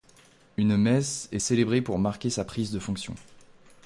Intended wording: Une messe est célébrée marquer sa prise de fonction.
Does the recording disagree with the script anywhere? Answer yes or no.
yes